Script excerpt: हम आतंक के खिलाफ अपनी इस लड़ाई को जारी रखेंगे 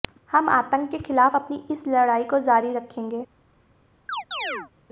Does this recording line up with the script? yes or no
yes